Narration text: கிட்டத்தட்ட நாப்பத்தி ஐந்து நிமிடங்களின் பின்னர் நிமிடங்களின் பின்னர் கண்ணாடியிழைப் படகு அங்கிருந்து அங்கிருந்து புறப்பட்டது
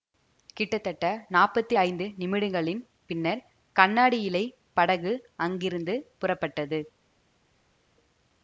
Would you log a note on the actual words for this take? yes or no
yes